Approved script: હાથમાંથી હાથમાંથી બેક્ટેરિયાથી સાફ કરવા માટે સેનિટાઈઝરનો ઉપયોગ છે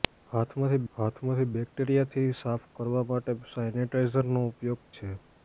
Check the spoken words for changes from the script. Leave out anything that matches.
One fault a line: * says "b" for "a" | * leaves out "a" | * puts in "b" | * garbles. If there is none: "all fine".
all fine